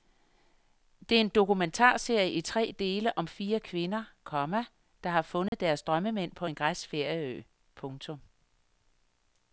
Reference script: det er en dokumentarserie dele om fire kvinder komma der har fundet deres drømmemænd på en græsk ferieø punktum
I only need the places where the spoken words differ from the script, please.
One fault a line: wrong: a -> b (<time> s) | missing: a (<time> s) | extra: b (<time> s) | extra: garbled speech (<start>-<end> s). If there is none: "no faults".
extra: i tre (2.3 s)